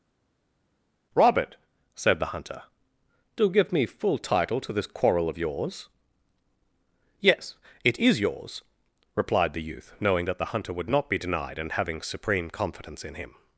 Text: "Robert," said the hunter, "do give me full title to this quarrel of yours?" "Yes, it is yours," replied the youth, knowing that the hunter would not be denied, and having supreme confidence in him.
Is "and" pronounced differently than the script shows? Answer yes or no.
no